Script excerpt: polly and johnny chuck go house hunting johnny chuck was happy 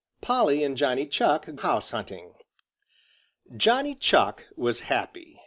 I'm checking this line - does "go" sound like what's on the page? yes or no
no